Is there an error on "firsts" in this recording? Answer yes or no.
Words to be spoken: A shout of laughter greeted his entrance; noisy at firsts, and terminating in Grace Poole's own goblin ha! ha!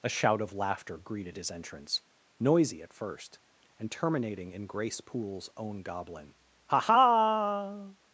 yes